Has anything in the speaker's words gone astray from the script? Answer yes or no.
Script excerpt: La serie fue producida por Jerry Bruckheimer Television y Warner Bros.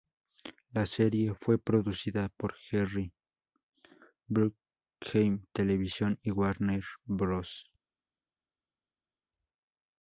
no